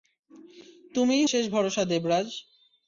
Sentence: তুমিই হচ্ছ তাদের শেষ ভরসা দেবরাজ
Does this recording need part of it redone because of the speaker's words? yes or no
yes